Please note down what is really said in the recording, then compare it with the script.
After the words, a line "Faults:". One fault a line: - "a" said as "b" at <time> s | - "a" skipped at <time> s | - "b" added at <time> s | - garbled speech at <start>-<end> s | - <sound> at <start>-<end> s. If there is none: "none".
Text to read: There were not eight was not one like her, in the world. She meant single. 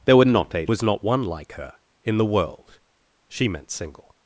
There were not eight was not one like her, in the world. She meant single.
Faults:
none